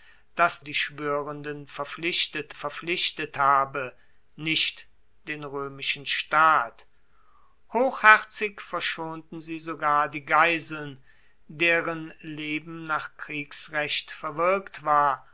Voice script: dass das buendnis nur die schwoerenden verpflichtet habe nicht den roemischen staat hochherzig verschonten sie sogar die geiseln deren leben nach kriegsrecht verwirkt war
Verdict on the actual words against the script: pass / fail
fail